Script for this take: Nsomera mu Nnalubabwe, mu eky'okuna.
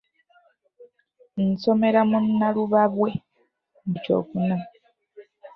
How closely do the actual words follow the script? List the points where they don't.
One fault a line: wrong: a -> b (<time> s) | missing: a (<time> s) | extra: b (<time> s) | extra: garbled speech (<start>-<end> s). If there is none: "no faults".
no faults